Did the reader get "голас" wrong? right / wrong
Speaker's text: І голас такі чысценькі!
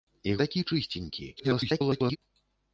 wrong